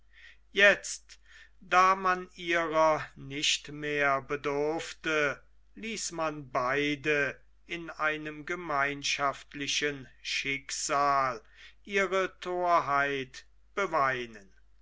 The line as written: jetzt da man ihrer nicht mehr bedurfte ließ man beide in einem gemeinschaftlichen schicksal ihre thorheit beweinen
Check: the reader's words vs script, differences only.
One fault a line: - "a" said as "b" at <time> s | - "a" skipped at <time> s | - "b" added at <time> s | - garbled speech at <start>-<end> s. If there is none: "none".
none